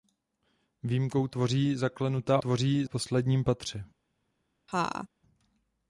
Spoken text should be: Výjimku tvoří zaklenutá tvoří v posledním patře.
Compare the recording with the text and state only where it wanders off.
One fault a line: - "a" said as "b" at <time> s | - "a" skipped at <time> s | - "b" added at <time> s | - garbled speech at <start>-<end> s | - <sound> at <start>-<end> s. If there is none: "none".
- laugh at 4.7-5.1 s